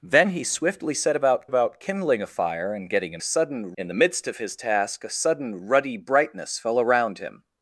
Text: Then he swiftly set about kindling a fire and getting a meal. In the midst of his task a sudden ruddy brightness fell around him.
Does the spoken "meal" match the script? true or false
false